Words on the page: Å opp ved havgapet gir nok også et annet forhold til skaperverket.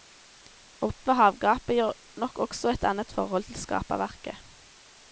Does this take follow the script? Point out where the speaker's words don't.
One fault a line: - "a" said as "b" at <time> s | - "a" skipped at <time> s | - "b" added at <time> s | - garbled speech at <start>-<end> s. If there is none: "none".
none